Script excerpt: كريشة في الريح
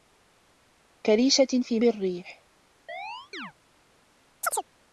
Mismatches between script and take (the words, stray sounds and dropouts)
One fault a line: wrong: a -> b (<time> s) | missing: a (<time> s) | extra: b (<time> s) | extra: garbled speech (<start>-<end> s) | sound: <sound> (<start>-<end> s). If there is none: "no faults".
sound: chirp (2.9-3.5 s)
sound: chirp (4.4-4.7 s)